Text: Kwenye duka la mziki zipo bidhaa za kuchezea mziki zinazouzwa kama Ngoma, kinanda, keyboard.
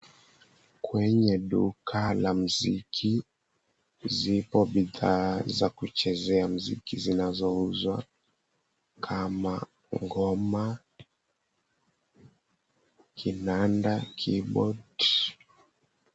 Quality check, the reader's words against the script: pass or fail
pass